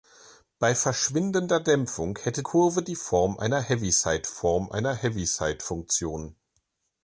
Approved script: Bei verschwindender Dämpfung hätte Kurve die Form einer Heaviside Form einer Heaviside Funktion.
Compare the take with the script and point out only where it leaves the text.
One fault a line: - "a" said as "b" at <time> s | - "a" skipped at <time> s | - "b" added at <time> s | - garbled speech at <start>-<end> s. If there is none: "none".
none